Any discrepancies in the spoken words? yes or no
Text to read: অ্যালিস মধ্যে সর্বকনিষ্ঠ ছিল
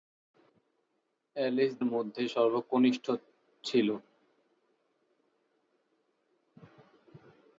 no